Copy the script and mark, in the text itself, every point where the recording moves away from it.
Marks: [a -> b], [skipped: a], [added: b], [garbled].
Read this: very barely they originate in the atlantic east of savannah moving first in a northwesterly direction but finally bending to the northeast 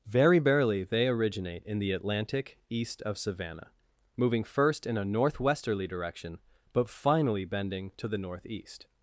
very barely they originate in the atlantic east of savannah moving first in a northwesterly direction but finally bending to the northeast